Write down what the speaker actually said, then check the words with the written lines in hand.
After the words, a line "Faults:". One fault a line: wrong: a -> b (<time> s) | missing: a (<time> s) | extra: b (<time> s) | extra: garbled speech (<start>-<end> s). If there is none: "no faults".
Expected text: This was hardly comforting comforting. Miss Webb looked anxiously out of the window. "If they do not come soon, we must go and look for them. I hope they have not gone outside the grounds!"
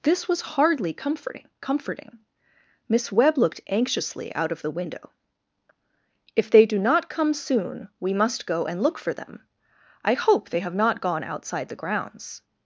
This was hardly comforting comforting. Miss Webb looked anxiously out of the window. "If they do not come soon, we must go and look for them. I hope they have not gone outside the grounds!"
Faults:
no faults